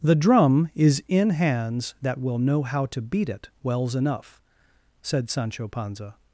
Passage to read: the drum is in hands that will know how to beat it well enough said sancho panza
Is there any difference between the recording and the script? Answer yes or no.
yes